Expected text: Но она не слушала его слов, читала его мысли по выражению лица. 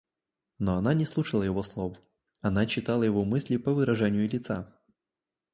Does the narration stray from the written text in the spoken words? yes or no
yes